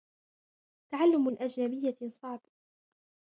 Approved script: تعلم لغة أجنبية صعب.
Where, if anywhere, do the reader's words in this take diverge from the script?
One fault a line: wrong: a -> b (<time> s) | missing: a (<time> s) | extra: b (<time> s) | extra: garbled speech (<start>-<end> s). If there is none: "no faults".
missing: لغة (1.3 s)